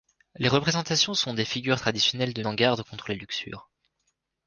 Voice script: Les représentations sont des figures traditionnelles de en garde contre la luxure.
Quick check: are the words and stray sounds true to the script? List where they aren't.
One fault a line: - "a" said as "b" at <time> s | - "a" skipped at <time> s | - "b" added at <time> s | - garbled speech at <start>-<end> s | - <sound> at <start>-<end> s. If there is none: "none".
none